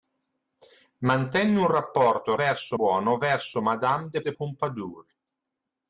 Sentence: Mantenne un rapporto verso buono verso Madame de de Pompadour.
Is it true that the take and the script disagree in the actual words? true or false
false